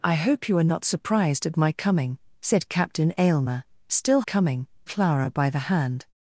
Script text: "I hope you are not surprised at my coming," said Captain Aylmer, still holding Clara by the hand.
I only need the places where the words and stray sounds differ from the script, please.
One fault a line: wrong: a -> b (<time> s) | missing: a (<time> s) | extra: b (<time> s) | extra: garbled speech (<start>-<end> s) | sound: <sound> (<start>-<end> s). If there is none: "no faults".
wrong: holding -> coming (4.2 s)